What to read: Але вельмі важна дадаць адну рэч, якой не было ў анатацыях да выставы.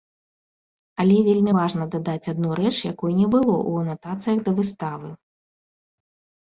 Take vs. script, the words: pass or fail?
pass